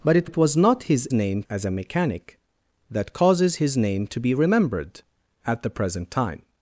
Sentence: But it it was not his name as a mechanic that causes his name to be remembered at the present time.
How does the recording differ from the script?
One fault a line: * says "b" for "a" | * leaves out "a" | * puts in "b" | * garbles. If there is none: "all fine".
all fine